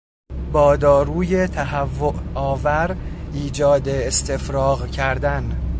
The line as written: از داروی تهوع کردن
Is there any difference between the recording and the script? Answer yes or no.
yes